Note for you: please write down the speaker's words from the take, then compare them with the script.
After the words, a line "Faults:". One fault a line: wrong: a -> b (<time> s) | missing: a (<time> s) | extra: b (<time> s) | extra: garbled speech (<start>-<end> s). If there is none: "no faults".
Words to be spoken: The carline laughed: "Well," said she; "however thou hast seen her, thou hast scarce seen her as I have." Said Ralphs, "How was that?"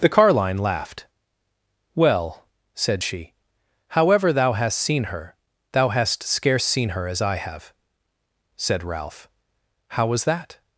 The carline laughed: "Well," said she; "however thou hast seen her, thou hast scarce seen her as I have." Said Ralph, "How was that?"
Faults:
wrong: Ralphs -> Ralph (8.8 s)